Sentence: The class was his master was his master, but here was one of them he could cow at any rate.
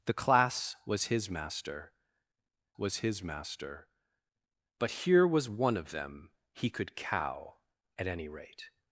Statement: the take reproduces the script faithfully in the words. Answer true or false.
true